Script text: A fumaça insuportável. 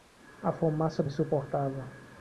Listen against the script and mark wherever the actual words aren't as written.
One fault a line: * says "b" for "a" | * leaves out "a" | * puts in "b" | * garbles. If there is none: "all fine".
all fine